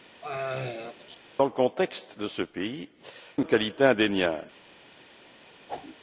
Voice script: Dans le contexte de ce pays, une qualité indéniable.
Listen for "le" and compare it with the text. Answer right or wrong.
right